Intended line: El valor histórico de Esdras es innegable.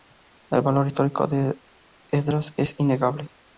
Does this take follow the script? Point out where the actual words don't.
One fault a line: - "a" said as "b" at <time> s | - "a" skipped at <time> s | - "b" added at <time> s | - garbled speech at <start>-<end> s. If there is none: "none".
none